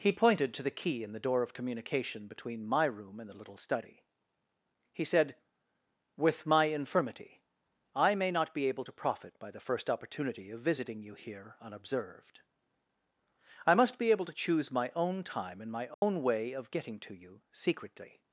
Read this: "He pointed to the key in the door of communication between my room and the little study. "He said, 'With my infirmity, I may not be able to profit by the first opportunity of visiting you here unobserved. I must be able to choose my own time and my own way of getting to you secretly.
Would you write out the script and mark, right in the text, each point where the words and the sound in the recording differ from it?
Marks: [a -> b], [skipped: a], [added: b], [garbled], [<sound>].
"He pointed to the key in the door of communication between my room and the little study. "He said, 'With my infirmity, I may not be able to profit by the first opportunity of visiting you here unobserved. I must be able to choose my own time and my own [dropout] way of getting to you secretly.